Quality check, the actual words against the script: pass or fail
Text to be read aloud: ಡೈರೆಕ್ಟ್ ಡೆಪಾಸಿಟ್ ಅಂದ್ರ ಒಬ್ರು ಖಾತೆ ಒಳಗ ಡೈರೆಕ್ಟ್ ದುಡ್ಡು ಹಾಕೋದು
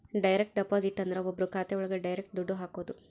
pass